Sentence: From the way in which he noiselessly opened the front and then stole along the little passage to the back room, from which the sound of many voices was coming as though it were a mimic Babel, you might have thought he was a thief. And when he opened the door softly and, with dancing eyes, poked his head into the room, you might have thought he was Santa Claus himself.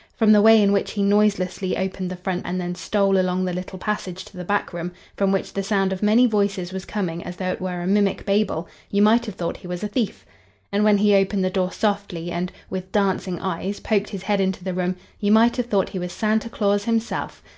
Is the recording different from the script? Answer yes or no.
no